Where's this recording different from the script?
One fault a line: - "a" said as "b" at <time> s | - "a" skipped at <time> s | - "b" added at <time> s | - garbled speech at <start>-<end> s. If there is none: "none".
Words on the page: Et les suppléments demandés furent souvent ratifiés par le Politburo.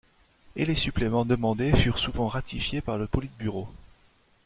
none